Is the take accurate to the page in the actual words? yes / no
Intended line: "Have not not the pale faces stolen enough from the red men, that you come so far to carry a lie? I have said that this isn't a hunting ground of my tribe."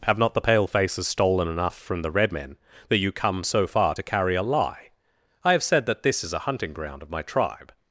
no